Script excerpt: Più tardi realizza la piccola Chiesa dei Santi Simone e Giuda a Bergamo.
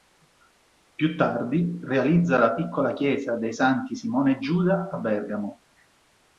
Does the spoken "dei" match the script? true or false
true